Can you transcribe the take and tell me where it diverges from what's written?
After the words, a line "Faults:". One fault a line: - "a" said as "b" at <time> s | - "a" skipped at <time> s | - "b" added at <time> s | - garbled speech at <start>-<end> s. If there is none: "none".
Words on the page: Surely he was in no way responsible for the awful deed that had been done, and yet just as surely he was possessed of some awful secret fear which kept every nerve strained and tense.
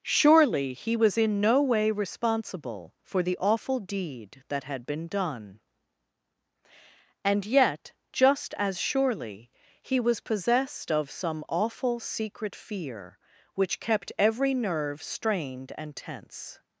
Surely he was in no way responsible for the awful deed that had been done, and yet just as surely he was possessed of some awful secret fear which kept every nerve strained and tense.
Faults:
none